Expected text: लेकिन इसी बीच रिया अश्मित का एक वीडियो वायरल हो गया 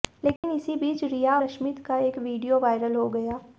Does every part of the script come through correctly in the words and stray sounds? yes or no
no